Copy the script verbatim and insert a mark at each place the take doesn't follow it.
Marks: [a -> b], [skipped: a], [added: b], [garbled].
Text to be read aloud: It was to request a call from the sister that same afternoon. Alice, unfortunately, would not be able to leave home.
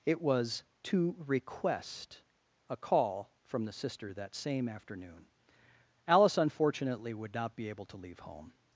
It was to request a call from the sister that same afternoon. Alice, unfortunately, would not be able to leave home.